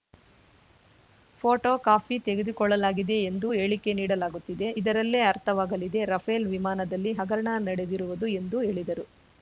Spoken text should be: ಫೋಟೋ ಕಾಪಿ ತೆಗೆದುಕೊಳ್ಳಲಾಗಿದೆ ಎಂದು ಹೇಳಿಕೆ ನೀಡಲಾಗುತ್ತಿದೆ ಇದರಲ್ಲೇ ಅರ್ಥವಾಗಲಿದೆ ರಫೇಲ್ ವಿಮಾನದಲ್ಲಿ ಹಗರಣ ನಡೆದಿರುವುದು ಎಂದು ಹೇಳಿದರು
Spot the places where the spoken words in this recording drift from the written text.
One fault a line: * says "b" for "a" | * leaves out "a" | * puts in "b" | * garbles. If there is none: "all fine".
all fine